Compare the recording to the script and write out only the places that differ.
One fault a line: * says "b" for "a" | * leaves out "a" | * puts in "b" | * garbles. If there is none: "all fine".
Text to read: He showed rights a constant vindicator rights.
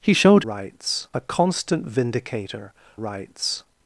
all fine